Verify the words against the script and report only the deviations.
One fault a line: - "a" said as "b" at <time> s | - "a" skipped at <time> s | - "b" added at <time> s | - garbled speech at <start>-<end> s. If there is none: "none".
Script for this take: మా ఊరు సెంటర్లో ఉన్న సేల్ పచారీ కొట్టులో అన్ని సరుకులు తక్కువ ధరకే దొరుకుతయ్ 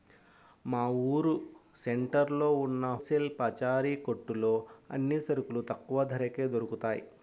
none